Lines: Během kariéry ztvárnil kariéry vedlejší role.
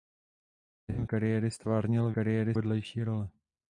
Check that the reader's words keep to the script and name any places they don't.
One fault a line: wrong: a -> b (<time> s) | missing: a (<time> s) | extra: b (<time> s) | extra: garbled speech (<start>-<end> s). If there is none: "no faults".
no faults